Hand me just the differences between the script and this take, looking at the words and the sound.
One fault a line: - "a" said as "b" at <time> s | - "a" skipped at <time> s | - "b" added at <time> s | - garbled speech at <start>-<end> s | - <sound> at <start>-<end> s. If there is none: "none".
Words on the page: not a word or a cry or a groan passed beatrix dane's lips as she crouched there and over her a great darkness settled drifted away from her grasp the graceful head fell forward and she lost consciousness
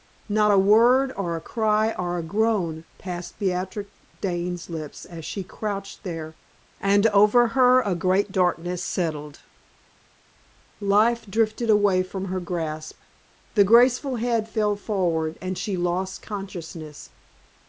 - "life" added at 10.8 s